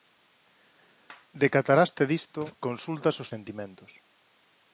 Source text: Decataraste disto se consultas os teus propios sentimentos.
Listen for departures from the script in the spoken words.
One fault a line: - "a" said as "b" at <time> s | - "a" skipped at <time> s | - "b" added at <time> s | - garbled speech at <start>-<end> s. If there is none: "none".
- "se" skipped at 2.4 s
- "teus propios" skipped at 3.3 s